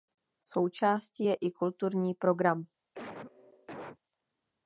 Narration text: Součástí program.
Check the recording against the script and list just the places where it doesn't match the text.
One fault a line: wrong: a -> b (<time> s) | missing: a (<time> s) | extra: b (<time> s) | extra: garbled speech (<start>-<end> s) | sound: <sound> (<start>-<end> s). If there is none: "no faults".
extra: je i kulturní (1.2 s)
sound: cough (2.9-4.0 s)